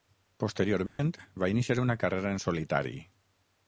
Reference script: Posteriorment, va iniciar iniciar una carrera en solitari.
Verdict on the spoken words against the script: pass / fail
fail